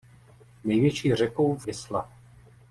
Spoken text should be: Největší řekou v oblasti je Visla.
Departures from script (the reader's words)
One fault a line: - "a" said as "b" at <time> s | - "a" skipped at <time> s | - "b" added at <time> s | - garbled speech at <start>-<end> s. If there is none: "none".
- "oblasti je" skipped at 1.7 s